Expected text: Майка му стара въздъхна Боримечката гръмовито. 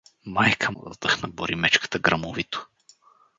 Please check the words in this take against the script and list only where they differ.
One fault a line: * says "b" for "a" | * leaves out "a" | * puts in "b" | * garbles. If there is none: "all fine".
* leaves out "му стара"